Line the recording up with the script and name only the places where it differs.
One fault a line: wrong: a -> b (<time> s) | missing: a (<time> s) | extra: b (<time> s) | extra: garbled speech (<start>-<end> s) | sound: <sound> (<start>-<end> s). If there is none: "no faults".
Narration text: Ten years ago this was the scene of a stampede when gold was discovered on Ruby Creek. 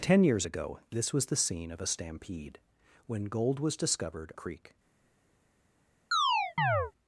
missing: on Ruby (4.3 s)
sound: chirp (6.1-6.9 s)